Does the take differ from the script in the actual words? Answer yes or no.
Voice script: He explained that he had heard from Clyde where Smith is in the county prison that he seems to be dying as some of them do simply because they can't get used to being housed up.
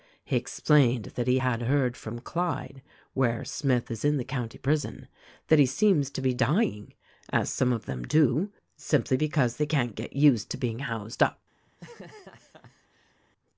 no